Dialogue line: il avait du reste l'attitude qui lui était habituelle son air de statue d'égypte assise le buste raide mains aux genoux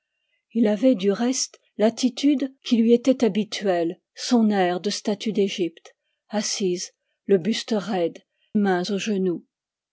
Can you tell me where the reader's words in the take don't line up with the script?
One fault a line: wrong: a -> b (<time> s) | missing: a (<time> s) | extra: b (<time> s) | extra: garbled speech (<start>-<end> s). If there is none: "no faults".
no faults